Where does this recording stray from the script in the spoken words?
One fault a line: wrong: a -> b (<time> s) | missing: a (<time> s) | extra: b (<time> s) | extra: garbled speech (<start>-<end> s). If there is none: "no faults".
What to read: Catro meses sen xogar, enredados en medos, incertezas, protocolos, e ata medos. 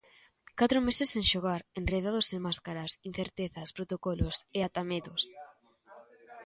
wrong: medos -> máscaras (2.5 s)